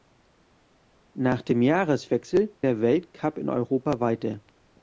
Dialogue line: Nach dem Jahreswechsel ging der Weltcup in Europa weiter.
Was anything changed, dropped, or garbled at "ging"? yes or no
yes